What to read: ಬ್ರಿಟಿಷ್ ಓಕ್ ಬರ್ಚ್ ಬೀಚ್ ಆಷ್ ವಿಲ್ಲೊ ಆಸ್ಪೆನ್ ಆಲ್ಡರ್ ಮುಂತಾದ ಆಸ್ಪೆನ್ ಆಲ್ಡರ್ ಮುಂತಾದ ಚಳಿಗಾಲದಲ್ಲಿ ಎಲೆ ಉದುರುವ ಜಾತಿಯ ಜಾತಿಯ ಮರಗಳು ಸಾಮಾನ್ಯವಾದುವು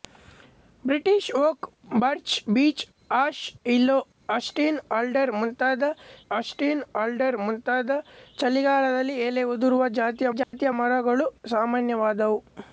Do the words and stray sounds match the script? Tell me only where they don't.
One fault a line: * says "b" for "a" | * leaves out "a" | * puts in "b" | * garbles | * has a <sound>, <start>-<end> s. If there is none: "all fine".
* has a dropout, 10.4-10.5 s